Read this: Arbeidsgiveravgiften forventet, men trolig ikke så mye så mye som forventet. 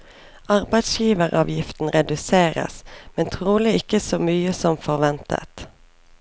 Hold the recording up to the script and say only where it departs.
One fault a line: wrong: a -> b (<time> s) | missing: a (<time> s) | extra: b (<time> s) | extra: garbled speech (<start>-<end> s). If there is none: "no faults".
wrong: forventet -> reduseres (1.9 s)
missing: så mye (4.5 s)